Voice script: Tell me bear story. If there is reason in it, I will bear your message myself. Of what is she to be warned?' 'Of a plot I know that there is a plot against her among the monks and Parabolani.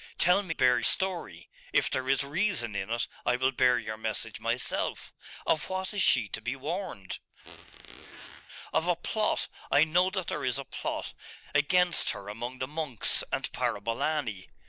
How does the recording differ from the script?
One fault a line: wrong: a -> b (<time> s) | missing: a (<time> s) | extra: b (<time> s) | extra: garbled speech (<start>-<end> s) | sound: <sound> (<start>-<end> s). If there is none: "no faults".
sound: squeak (7.4-8.5 s)